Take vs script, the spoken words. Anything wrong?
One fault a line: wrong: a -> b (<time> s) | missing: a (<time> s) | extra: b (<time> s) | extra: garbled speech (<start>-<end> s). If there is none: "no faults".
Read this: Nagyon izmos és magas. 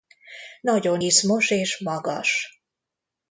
no faults